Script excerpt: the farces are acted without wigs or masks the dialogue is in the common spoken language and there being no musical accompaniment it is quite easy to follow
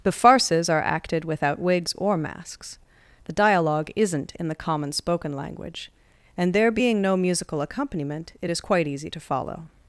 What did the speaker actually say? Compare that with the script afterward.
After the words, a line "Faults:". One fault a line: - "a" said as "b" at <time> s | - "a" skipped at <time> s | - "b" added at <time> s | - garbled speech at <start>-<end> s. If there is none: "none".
the farces are acted without wigs or masks the dialogue isn't in the common spoken language and there being no musical accompaniment it is quite easy to follow
Faults:
- "is" said as "isn't" at 3.9 s